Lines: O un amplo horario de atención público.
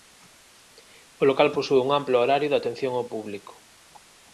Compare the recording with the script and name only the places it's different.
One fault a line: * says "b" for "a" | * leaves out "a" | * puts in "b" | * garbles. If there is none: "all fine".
* puts in "local posúe"
* puts in "ao"